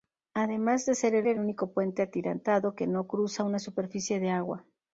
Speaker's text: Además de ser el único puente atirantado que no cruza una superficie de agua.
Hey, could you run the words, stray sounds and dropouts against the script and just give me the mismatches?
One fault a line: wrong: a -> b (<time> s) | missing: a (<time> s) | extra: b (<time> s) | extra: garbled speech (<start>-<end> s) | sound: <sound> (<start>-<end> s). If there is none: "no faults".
extra: el (1.3 s)